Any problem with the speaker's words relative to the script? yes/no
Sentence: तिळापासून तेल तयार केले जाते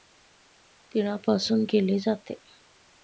yes